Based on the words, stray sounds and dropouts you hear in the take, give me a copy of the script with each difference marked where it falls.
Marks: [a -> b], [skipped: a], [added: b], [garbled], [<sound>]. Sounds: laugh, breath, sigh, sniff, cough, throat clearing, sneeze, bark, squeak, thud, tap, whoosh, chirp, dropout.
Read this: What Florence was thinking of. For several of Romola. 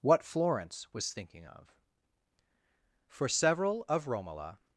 What Florence was thinking of. For several of Romola.